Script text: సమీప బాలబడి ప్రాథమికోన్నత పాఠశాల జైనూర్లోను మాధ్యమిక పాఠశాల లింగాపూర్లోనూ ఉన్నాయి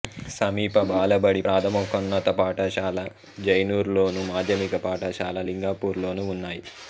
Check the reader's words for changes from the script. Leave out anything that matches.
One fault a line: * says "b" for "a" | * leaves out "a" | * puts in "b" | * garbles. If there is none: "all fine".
all fine